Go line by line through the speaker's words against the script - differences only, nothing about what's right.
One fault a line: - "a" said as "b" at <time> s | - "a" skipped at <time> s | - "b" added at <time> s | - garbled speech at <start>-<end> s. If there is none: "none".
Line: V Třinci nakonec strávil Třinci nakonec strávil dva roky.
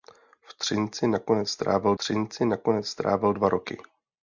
none